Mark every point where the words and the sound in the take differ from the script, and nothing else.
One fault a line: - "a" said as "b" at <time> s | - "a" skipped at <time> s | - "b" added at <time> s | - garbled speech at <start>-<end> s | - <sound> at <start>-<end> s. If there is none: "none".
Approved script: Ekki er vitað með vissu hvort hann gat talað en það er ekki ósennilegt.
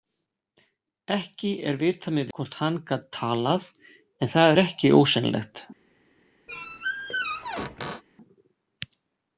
- "vissu" skipped at 2.3 s
- squeak at 6.5-8.0 s